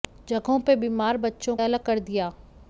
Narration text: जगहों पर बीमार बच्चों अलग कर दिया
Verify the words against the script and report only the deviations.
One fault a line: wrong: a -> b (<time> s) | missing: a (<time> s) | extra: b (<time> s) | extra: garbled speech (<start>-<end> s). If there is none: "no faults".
no faults